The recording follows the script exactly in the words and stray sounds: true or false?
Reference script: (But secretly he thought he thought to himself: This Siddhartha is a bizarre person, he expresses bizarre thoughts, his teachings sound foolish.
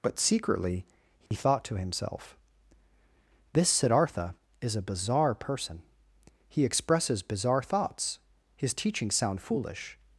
false